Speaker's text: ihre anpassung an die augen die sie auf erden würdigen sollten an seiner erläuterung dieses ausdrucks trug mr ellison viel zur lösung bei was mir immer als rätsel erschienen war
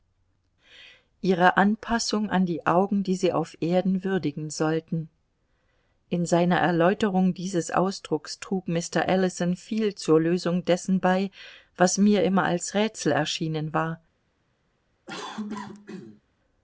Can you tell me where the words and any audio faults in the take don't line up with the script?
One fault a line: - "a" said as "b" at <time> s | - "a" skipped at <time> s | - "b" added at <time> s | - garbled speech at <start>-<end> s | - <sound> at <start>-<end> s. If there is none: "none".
- "an" said as "in" at 6.1 s
- "dessen" added at 10.6 s
- cough at 15.1-16.2 s